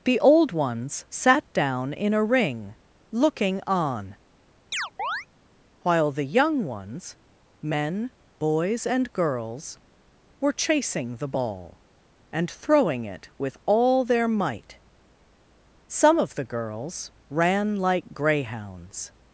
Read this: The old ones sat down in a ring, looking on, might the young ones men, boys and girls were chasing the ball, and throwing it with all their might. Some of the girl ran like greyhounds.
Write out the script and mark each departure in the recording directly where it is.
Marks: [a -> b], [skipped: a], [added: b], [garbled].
The old ones sat down in a ring, looking on, [might -> while] the young ones men, boys and girls were chasing the ball, and throwing it with all their might. Some of the [girl -> girls] ran like greyhounds.